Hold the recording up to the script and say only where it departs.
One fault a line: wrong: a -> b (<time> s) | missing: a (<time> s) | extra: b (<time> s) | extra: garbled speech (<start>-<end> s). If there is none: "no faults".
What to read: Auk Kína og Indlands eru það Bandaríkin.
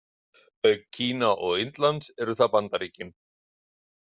no faults